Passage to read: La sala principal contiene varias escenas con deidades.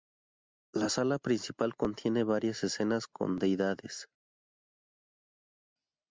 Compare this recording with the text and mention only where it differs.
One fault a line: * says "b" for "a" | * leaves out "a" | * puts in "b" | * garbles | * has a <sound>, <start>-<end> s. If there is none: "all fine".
all fine